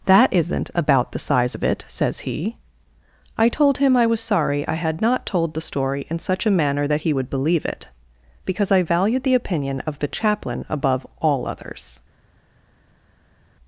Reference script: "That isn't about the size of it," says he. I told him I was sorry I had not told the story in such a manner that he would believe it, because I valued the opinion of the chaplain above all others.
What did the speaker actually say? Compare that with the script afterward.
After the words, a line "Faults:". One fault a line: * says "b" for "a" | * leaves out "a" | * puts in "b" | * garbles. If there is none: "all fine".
"That isn't about the size of it," says he. I told him I was sorry I had not told the story in such a manner that he would believe it, because I valued the opinion of the chaplain above all others.
Faults:
all fine